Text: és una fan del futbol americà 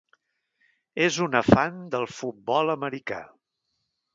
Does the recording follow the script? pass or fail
pass